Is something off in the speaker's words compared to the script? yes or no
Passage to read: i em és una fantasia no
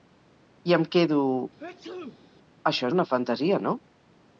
yes